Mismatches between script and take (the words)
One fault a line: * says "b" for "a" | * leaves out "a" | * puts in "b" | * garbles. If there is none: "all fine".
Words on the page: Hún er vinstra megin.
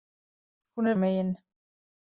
* leaves out "vinstra"